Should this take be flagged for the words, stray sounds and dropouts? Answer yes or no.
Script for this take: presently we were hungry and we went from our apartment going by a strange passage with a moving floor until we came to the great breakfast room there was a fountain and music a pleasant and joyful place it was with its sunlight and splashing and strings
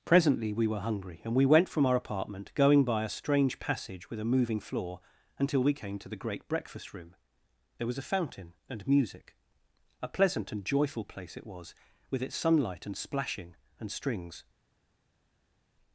no